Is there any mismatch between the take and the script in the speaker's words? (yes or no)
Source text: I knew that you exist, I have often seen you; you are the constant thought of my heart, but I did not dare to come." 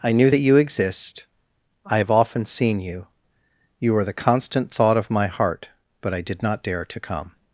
no